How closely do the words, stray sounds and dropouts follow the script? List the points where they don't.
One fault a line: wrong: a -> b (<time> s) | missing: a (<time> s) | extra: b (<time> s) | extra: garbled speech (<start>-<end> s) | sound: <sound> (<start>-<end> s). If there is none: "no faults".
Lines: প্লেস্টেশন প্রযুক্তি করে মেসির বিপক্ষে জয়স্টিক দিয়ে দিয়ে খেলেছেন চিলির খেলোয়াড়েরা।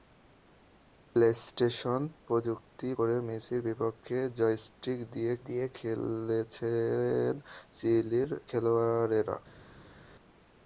no faults